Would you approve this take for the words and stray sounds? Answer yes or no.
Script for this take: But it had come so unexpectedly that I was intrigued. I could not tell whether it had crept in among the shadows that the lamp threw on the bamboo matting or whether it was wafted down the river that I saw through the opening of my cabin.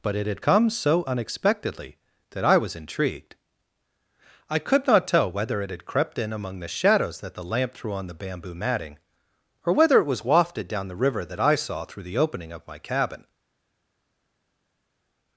yes